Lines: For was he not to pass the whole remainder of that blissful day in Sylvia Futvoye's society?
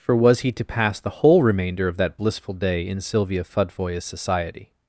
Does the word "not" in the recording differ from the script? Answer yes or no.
yes